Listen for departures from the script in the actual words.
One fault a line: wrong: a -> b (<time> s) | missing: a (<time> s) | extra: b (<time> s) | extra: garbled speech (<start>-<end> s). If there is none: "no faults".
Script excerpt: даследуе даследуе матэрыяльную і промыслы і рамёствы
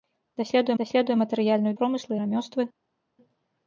no faults